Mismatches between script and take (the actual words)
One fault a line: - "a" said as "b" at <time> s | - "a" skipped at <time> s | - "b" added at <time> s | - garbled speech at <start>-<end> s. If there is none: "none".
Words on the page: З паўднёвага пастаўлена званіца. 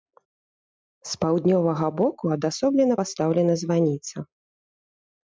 - "боку адасоблена" added at 2.0 s